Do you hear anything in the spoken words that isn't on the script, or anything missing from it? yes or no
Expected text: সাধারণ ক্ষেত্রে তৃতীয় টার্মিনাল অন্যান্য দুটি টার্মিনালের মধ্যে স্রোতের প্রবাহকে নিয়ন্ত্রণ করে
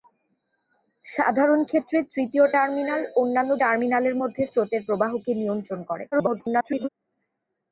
yes